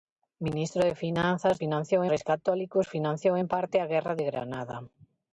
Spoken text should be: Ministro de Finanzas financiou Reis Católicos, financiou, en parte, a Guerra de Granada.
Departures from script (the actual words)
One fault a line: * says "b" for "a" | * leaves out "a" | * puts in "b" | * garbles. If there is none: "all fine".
all fine